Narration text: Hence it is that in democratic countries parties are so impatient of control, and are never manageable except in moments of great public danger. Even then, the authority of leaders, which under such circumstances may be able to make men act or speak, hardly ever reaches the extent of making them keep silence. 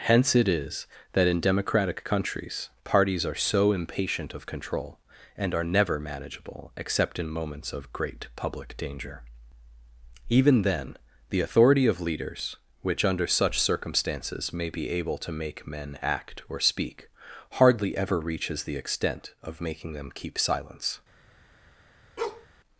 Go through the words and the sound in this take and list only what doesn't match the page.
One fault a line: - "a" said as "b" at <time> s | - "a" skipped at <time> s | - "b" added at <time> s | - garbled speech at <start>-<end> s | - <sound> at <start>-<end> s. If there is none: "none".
- bark at 22.2-22.5 s